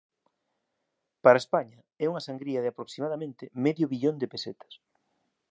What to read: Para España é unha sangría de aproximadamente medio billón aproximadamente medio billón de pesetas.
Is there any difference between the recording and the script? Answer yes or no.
yes